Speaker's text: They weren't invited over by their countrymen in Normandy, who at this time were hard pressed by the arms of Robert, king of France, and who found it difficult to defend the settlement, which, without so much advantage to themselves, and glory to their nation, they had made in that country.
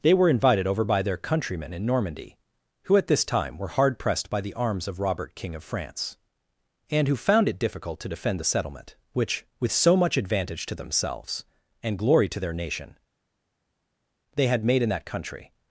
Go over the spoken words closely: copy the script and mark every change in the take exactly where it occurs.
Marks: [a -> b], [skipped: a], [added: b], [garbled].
They [weren't -> were] invited over by their countrymen in Normandy, who at this time were hard pressed by the arms of Robert, king of France, and who found it difficult to defend the settlement, which, [without -> with] so much advantage to themselves, and glory to their nation, they had made in that country.